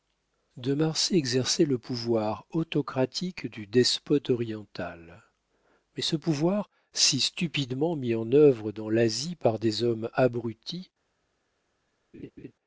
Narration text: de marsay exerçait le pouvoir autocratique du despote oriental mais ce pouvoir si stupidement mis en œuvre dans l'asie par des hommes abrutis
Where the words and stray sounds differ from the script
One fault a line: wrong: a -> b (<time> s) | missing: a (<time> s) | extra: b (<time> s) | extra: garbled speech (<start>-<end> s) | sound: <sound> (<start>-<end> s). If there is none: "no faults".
sound: laugh (12.1-12.5 s)